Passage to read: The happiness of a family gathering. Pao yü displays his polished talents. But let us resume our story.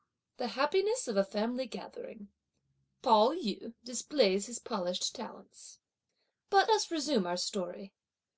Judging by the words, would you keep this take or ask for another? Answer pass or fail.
fail